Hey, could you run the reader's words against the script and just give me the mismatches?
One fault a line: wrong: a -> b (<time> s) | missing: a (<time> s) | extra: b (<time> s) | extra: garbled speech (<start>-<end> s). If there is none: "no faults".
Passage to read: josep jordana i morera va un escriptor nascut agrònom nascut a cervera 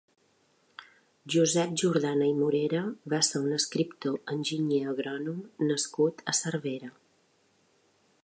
extra: ser (3.3 s)
wrong: nascut -> enginyer (4.4 s)